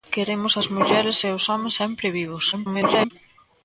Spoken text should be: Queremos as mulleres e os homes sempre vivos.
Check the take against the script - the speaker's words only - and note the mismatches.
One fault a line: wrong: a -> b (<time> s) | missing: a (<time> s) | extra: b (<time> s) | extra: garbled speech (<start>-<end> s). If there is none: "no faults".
extra: garbled speech (2.5-3.1 s)